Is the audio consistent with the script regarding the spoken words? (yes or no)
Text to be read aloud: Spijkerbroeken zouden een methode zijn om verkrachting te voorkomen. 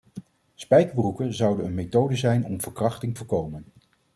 no